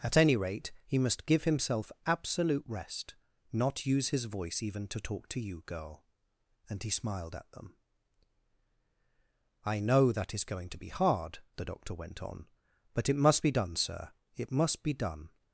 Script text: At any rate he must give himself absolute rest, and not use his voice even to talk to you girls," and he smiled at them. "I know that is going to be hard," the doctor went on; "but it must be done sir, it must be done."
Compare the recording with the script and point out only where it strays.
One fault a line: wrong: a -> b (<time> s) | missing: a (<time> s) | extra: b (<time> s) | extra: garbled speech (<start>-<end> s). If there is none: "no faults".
missing: and (3.1 s)
wrong: girls -> girl (5.7 s)